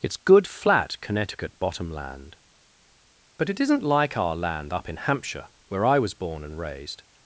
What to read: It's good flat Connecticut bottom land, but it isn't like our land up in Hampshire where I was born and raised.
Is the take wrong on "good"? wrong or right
right